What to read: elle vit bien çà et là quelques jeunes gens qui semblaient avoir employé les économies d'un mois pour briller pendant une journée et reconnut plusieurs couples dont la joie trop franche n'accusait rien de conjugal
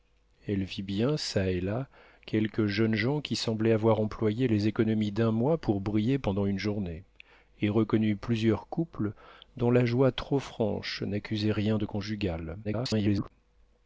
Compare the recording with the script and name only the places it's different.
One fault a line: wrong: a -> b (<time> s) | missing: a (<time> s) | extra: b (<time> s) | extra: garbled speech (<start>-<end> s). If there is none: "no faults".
extra: garbled speech (12.6-13.3 s)